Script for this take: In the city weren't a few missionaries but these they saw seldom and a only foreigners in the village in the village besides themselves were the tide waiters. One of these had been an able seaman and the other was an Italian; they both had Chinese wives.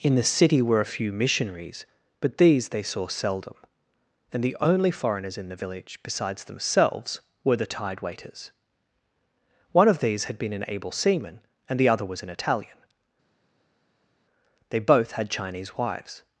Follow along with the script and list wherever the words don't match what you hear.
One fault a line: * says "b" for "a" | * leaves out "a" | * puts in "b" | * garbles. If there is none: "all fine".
* says "were" for "weren't"
* says "the" for "a"
* leaves out "in the village"